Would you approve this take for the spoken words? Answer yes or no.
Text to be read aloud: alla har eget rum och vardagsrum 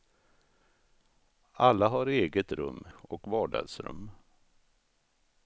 yes